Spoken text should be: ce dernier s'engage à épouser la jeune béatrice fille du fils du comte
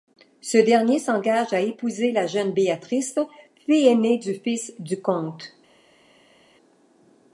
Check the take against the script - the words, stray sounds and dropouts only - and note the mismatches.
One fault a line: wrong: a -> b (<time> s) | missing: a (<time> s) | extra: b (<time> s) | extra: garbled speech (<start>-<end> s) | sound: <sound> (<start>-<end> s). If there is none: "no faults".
extra: aînée (3.9 s)